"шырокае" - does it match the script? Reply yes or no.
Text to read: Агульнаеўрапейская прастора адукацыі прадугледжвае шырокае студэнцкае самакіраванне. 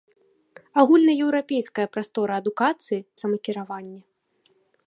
no